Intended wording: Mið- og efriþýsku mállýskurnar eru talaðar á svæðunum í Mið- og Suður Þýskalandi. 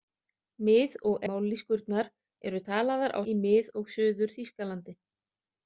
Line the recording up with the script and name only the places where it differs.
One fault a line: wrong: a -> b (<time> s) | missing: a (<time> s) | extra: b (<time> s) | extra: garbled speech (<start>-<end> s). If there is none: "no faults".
missing: efriþýsku (1.3 s)
missing: svæðunum (3.2 s)